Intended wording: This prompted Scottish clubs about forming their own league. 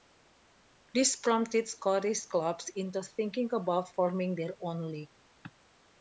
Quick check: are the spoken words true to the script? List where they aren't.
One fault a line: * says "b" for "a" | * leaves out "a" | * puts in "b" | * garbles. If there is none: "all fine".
* puts in "into thinking"